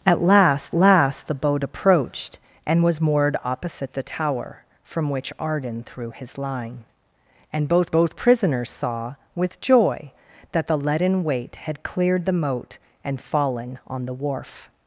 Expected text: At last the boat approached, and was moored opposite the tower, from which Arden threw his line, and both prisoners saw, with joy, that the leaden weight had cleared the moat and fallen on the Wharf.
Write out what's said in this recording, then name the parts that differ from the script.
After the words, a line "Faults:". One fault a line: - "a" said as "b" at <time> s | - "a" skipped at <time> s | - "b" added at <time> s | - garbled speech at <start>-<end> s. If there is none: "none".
At last last the boat approached, and was moored opposite the tower, from which Arden threw his line, and both both prisoners saw, with joy, that the leaden weight had cleared the moat and fallen on the Wharf.
Faults:
- "last" added at 0.7 s
- "both" added at 7.9 s